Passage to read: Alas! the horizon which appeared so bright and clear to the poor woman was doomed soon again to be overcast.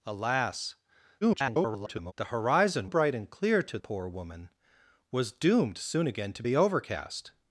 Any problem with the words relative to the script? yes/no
yes